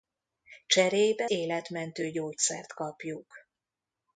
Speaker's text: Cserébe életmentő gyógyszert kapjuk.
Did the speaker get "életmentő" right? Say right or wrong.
right